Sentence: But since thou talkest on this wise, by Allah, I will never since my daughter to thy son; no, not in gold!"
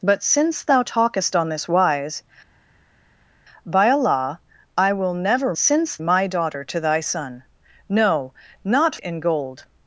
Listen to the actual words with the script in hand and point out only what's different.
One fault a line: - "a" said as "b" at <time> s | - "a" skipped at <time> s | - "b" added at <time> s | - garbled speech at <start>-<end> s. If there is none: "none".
none